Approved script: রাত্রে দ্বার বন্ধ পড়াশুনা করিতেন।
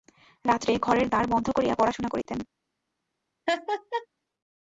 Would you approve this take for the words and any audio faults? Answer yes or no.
no